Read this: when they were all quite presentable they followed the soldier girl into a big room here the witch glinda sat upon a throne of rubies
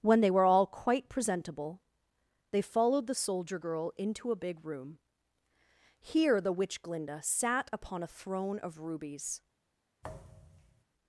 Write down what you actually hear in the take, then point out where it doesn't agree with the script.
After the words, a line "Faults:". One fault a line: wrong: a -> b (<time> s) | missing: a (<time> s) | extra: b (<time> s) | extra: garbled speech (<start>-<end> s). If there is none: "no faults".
when they were all quite presentable they followed the soldier girl into a big room here the witch glinda sat upon a throne of rubies
Faults:
no faults